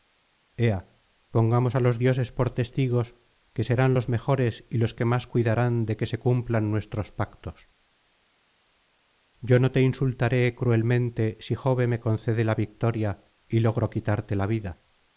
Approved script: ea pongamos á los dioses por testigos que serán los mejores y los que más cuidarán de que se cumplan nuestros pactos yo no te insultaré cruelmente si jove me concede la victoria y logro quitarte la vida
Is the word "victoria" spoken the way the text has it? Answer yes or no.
yes